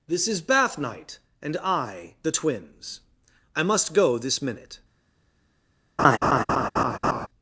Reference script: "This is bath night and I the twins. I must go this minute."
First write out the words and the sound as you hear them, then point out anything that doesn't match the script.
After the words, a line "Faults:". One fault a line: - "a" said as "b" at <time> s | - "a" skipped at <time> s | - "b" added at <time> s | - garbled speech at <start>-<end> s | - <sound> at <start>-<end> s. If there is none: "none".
"This is bath night and I the twins. I must go this minute."
Faults:
- laugh at 6.0-7.3 s